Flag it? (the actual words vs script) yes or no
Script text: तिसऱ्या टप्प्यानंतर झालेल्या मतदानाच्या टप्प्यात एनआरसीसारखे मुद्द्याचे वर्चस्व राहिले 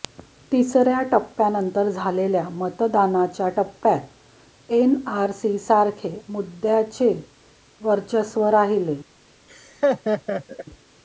no